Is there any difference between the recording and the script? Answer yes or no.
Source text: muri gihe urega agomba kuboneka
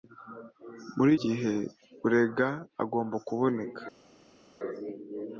no